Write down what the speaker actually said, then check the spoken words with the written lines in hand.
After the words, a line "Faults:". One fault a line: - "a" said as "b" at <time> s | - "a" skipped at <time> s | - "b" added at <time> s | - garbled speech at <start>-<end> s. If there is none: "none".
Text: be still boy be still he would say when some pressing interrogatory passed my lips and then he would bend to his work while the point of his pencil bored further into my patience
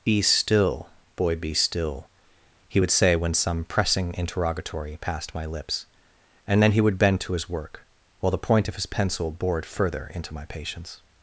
be still boy be still he would say when some pressing interrogatory passed my lips and then he would bend to his work while the point of his pencil bored further into my patience
Faults:
none